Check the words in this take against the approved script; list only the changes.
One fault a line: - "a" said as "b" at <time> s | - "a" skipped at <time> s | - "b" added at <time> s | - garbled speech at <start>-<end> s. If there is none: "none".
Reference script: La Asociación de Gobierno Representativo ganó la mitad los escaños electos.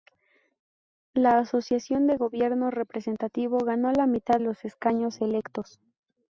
none